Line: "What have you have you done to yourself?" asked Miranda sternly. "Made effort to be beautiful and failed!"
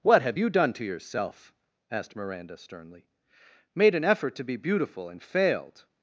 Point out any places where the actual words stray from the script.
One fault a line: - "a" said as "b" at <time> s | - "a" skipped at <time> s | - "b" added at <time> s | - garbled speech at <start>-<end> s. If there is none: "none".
- "have you" skipped at 0.5 s
- "an" added at 3.9 s